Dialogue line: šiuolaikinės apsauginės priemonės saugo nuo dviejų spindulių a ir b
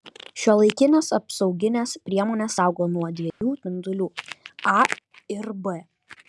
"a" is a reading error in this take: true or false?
false